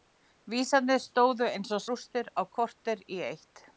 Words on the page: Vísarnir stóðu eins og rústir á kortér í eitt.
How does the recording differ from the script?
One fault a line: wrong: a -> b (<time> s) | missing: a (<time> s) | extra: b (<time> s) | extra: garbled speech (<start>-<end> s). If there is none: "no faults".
no faults